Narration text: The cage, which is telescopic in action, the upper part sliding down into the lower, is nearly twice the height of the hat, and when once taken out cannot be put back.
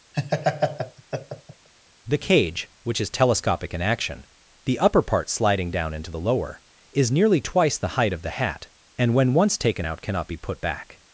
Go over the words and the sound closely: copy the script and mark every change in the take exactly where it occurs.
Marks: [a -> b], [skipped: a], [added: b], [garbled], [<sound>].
[laugh] The cage, which is telescopic in action, the upper part sliding down into the lower, is nearly twice the height of the hat, and when once taken out cannot be put back.